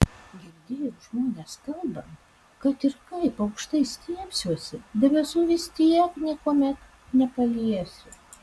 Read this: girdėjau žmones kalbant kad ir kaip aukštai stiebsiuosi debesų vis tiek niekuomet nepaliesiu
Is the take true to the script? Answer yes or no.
yes